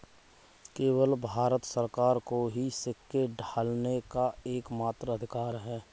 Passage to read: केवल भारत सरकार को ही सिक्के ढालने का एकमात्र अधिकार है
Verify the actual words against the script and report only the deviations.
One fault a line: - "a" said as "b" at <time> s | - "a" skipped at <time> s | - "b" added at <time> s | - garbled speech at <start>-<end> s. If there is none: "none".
none